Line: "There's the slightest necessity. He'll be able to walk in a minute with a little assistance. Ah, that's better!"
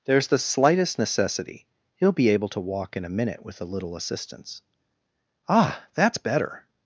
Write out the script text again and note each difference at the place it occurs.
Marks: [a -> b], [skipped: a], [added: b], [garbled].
"There's the slightest necessity. He'll be able to walk in a minute with a little assistance. Ah, that's better!"